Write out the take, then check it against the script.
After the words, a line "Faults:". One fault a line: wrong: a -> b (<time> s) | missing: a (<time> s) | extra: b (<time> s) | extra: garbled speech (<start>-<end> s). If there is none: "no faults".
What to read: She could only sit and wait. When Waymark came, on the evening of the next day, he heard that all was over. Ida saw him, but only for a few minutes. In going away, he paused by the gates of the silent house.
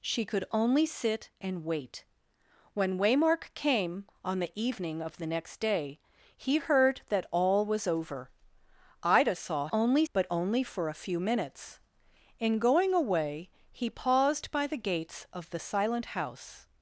She could only sit and wait. When Waymark came, on the evening of the next day, he heard that all was over. Ida saw only, but only for a few minutes. In going away, he paused by the gates of the silent house.
Faults:
wrong: him -> only (9.7 s)